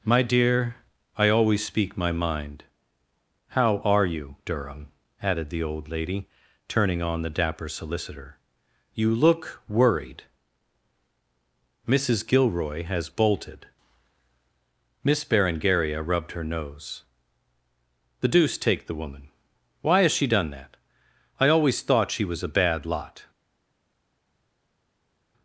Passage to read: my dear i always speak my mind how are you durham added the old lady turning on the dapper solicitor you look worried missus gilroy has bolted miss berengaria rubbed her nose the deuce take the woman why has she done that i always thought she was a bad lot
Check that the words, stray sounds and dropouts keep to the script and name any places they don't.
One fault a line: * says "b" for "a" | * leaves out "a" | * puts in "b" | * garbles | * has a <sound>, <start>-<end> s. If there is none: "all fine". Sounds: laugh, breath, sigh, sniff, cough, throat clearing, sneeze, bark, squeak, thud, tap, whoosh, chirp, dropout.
all fine